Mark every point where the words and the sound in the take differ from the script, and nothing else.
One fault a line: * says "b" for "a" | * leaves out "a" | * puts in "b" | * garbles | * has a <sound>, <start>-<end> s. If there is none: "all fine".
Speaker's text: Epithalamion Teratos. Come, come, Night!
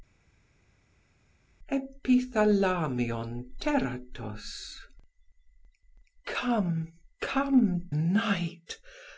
all fine